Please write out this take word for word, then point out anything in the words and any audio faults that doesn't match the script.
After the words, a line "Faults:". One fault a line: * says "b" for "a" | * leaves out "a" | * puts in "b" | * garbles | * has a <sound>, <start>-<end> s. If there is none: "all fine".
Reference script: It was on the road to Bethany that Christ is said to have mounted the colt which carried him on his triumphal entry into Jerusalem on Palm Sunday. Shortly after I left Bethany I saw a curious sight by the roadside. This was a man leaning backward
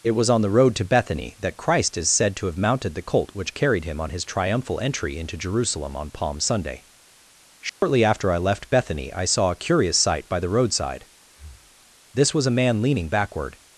It was on the road to Bethany that Christ is said to have mounted the colt which carried him on his triumphal entry into Jerusalem on Palm Sunday. Shortly after I left Bethany I saw a curious sight by the roadside. This was a man leaning backward
Faults:
* has a dropout, 7.7-7.8 s
* has a breath, 11.2-11.9 s